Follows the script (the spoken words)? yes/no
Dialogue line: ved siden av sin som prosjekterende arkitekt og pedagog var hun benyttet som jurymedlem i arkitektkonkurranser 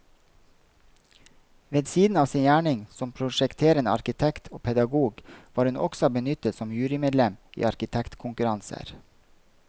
no